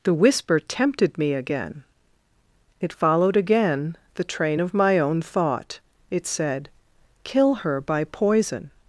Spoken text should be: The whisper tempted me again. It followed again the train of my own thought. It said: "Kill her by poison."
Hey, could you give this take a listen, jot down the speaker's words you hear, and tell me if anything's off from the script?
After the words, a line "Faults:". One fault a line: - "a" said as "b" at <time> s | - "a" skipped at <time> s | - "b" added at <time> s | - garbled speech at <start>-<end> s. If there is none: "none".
The whisper tempted me again. It followed again the train of my own thought. It said: "Kill her by poison."
Faults:
none